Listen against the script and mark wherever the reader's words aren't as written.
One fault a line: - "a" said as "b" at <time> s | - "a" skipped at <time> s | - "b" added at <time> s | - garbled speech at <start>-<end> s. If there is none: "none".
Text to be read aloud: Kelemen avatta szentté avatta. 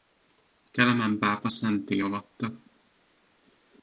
- "avatta" said as "pápa" at 1.2 s